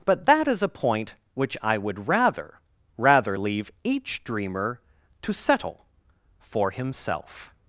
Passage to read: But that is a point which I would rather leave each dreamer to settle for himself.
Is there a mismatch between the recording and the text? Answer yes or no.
yes